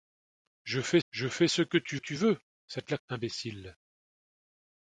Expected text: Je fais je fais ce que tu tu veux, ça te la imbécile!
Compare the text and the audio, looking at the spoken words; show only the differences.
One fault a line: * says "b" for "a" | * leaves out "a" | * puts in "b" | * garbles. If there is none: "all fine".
all fine